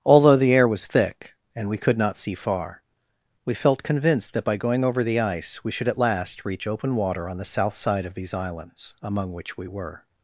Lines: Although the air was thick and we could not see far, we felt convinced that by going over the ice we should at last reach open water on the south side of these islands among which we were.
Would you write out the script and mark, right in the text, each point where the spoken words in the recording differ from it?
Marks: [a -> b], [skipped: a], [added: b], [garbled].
Although the air was thick and we could not see far, we felt convinced that by going over the ice we should at last reach open water on the south side of these islands among which we were.